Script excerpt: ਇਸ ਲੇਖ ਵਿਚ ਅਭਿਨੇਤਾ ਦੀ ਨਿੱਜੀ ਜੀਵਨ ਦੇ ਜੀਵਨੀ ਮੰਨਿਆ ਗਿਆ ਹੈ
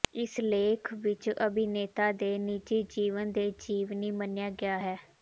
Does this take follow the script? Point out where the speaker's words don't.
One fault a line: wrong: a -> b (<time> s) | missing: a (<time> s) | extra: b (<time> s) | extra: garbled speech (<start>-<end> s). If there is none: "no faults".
wrong: ਦੀ -> ਦੇ (2.1 s)